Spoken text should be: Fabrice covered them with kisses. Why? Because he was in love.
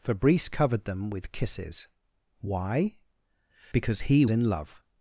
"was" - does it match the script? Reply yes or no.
no